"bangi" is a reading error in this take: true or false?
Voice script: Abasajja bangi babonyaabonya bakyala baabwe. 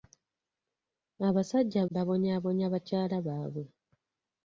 true